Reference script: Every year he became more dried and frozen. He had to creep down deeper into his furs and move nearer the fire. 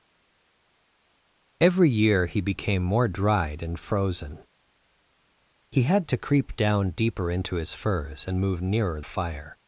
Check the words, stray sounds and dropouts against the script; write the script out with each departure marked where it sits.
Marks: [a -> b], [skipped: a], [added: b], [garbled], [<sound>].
Every year he became more dried and frozen. He had to creep down deeper into his furs and move nearer [skipped: the] fire.